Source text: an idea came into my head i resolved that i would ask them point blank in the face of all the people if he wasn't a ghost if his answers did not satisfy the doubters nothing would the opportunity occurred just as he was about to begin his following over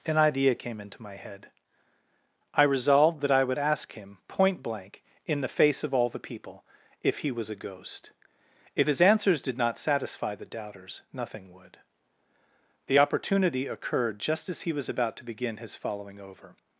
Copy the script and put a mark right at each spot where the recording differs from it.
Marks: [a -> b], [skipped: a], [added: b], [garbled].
an idea came into my head i resolved that i would ask [them -> him] point blank in the face of all the people if he [wasn't -> was] a ghost if his answers did not satisfy the doubters nothing would the opportunity occurred just as he was about to begin his following over